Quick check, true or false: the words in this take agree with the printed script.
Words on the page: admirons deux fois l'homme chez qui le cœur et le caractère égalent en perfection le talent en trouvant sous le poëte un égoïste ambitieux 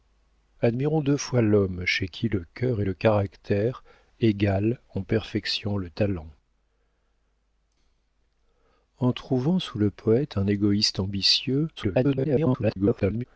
false